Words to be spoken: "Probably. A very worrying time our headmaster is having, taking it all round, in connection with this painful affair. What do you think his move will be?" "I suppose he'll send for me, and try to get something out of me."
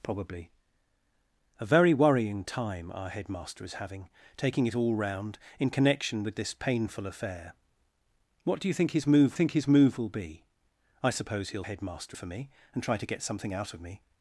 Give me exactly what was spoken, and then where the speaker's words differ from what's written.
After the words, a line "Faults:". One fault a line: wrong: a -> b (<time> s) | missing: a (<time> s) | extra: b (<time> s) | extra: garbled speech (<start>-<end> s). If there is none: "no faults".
"Probably. A very worrying time our headmaster is having, taking it all round, in connection with this painful affair. What do you think his move think his move will be?" "I suppose he'll headmaster for me, and try to get something out of me."
Faults:
extra: think his move (9.3 s)
wrong: send -> headmaster (11.6 s)